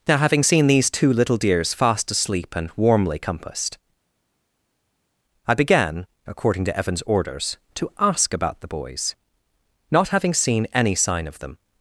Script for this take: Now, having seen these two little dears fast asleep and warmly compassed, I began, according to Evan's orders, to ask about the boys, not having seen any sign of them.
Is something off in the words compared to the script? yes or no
no